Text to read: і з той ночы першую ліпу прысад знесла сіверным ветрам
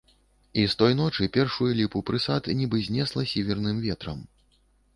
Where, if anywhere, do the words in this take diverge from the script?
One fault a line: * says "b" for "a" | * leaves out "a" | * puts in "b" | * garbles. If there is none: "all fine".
* puts in "нібы"